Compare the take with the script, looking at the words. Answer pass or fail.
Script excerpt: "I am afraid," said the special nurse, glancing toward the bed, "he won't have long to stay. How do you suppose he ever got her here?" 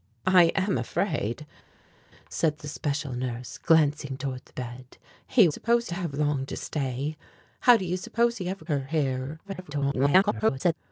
fail